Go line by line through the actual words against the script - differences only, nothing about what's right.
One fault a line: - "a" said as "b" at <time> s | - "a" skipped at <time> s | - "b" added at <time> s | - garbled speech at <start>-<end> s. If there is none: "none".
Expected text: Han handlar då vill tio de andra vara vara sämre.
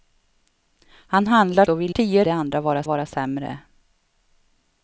none